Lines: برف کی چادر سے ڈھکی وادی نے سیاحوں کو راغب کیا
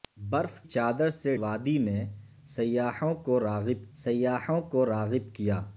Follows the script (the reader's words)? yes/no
no